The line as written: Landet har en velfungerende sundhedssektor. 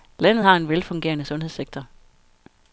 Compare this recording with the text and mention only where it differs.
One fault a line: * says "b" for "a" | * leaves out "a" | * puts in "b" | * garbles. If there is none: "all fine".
all fine